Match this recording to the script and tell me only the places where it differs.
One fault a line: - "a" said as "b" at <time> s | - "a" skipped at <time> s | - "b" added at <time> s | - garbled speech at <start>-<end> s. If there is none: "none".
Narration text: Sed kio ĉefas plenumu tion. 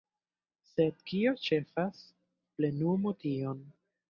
none